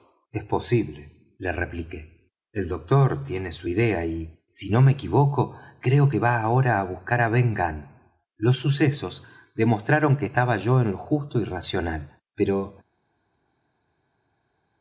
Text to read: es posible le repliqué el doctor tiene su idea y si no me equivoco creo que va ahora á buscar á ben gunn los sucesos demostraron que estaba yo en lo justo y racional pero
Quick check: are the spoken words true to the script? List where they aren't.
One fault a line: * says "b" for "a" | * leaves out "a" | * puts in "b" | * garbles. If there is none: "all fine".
all fine